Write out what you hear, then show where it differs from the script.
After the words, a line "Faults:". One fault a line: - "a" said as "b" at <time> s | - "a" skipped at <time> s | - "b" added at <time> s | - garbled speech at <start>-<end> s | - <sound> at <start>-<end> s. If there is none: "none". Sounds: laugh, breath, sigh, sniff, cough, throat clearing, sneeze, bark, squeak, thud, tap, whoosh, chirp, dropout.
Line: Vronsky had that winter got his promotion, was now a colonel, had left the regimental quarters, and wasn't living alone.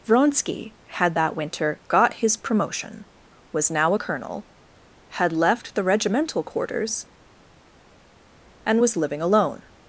Vronsky had that winter got his promotion, was now a colonel, had left the regimental quarters, and was living alone.
Faults:
- "wasn't" said as "was" at 8.8 s